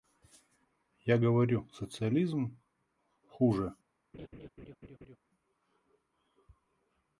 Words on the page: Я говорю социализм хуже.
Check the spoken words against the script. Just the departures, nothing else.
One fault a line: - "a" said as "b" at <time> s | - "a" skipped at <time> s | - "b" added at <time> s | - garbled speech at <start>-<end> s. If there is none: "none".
none